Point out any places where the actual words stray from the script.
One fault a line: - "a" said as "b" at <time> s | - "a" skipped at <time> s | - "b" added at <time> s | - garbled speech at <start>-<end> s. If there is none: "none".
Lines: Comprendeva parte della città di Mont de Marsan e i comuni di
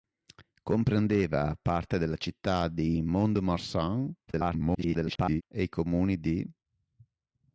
- garbled speech at 4.3-5.4 s